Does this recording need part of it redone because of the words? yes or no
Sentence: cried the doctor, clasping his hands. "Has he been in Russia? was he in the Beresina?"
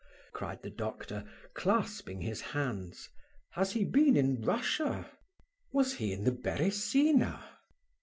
no